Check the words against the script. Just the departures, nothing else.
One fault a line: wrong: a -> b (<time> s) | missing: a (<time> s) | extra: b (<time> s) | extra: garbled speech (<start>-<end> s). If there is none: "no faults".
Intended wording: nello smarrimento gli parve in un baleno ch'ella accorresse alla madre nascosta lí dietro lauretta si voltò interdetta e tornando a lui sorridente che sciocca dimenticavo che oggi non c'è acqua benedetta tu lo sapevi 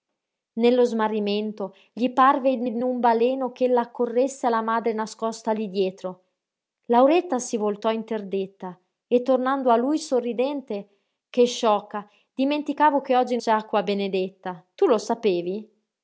extra: in (2.6 s)
missing: non (13.4 s)